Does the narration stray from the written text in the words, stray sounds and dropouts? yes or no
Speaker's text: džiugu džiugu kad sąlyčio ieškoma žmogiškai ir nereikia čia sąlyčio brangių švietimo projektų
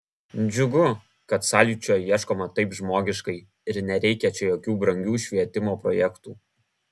yes